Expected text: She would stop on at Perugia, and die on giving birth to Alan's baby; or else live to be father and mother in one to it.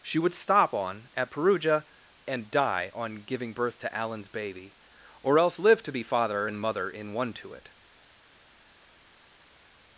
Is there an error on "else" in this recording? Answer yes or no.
no